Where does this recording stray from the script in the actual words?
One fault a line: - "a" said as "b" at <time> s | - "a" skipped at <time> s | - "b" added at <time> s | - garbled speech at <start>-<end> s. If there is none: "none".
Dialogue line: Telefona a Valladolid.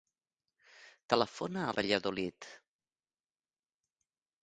none